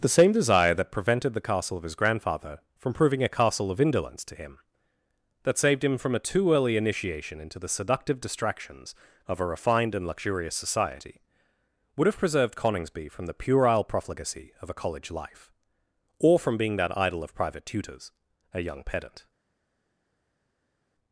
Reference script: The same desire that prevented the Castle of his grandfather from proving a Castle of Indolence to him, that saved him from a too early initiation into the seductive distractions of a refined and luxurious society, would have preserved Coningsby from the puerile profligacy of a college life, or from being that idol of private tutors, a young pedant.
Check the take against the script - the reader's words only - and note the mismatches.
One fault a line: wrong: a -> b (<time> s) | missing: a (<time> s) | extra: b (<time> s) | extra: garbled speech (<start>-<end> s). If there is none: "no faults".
no faults